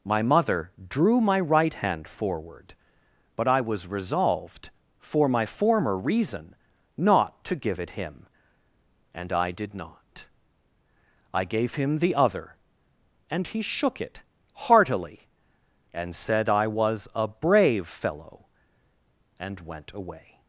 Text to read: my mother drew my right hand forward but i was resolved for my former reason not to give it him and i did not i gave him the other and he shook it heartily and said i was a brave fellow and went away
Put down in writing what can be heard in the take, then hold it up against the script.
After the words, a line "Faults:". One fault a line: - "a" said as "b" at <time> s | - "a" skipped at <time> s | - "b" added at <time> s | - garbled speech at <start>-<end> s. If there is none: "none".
my mother drew my right hand forward but i was resolved for my former reason not to give it him and i did not i gave him the other and he shook it heartily and said i was a brave fellow and went away
Faults:
none